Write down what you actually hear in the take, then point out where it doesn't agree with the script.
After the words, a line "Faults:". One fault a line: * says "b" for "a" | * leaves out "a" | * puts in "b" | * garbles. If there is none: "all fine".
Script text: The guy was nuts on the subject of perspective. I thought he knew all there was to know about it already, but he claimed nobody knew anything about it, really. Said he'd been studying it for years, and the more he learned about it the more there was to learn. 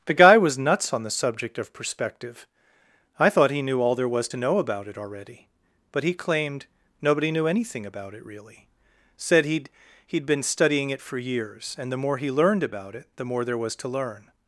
The guy was nuts on the subject of perspective. I thought he knew all there was to know about it already, but he claimed nobody knew anything about it, really. Said he'd he'd been studying it for years, and the more he learned about it the more there was to learn.
Faults:
* puts in "he'd"